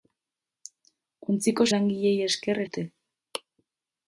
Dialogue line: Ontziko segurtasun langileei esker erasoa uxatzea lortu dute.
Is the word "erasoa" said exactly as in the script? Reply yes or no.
no